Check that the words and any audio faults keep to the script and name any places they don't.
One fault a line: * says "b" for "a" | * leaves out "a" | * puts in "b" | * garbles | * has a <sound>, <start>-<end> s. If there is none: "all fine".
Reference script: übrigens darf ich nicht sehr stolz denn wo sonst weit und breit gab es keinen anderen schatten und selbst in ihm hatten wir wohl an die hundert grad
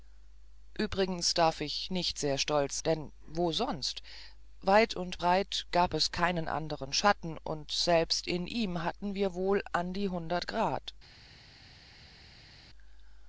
all fine